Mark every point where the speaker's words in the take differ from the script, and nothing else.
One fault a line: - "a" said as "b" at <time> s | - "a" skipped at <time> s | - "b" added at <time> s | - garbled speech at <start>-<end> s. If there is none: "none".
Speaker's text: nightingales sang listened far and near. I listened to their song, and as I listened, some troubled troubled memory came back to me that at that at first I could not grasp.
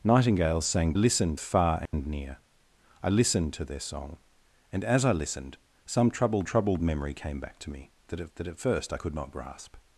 none